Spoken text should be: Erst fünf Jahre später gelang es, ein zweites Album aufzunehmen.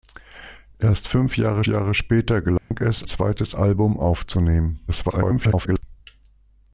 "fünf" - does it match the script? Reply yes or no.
yes